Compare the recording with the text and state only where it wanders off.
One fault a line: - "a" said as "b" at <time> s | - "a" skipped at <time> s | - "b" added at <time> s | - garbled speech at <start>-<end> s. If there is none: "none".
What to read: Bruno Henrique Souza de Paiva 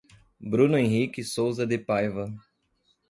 none